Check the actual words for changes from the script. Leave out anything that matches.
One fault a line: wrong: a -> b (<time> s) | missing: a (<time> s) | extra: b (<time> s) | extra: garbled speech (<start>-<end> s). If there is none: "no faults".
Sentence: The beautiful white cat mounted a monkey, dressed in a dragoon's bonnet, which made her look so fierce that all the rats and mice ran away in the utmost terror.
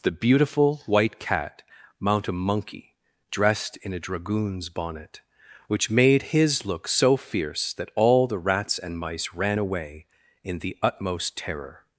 wrong: mounted -> mount (2.0 s)
wrong: her -> his (6.3 s)